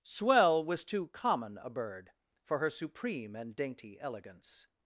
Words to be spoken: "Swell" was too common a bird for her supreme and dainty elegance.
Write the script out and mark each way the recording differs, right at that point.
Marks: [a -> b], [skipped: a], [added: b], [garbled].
"Swell" was too common a bird for her supreme and dainty elegance.